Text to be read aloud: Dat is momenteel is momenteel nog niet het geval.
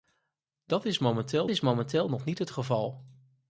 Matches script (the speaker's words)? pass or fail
pass